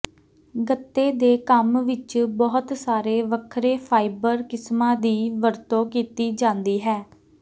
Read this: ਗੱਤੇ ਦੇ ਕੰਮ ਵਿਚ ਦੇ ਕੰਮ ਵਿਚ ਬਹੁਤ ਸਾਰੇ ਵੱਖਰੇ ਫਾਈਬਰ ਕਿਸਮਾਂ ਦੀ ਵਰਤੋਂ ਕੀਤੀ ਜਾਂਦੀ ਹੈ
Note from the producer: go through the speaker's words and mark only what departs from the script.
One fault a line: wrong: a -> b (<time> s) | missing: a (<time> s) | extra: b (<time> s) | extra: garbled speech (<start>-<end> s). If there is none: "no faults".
missing: ਦੇ ਕੰਮ ਵਿਚ (2.2 s)